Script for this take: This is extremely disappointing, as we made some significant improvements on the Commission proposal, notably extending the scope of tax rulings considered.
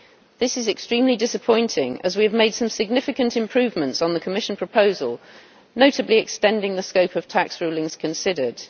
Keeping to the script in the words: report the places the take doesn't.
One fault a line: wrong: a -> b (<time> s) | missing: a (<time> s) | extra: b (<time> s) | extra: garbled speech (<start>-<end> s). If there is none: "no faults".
extra: have (2.2 s)